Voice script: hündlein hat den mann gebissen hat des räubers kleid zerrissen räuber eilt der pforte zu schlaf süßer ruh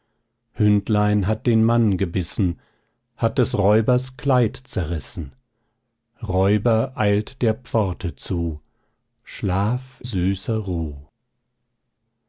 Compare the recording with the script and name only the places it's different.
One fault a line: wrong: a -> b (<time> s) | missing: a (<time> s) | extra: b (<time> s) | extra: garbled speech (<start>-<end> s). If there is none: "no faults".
no faults